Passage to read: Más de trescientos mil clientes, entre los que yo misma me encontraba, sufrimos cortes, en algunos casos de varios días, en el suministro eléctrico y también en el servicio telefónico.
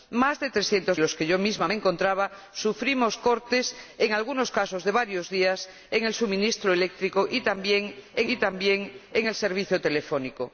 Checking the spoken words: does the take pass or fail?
fail